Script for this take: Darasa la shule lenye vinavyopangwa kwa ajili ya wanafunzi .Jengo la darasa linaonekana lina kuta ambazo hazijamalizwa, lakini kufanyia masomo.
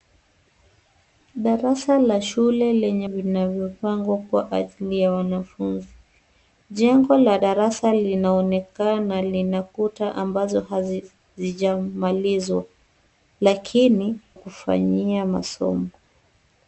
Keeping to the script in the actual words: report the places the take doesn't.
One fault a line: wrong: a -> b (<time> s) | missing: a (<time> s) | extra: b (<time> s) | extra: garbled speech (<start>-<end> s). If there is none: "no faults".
no faults